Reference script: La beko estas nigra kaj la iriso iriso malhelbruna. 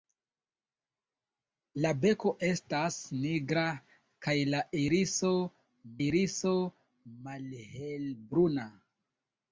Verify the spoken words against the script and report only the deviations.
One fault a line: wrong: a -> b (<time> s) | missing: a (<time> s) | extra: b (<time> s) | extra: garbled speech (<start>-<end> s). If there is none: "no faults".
no faults